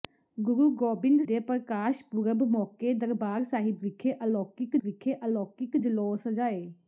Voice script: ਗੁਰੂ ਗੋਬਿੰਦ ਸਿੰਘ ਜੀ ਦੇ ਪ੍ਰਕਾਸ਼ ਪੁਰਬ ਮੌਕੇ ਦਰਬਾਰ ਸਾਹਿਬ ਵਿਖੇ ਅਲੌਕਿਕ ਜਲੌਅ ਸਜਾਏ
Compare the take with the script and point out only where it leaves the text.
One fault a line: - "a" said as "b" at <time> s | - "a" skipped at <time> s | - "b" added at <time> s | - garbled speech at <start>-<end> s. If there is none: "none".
- "ਸਿੰਘ ਜੀ" skipped at 1.2 s
- "ਵਿਖੇ ਅਲੌਕਿਕ" added at 4.8 s